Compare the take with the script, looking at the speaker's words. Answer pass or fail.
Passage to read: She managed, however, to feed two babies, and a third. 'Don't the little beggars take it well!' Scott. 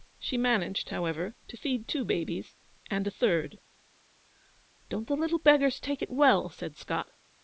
fail